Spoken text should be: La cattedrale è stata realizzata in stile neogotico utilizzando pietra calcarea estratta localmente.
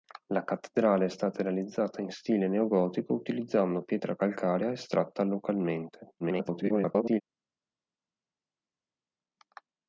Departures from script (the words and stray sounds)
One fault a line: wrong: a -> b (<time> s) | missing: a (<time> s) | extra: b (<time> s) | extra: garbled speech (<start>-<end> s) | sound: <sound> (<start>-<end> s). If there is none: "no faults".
extra: garbled speech (6.2-7.2 s)